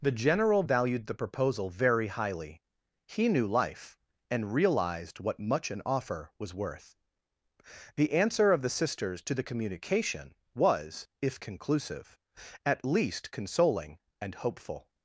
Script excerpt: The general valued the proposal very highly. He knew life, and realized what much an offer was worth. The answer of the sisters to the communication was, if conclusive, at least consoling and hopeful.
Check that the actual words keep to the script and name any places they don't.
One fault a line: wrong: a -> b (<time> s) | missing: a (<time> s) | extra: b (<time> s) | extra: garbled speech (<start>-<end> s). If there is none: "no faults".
no faults